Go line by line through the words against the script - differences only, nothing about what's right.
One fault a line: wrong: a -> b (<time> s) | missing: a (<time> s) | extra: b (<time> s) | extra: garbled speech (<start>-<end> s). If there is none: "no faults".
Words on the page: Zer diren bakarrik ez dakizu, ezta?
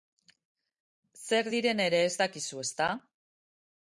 wrong: bakarrik -> ere (1.9 s)